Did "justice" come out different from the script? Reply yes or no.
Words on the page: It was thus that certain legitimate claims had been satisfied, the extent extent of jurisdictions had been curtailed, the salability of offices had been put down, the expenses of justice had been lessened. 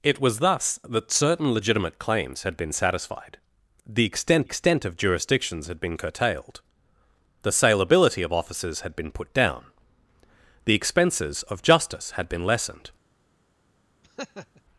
no